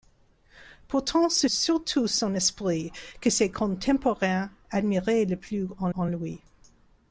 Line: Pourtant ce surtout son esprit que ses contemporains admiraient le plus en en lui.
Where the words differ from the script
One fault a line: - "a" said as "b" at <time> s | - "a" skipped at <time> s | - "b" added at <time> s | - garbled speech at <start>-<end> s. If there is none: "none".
none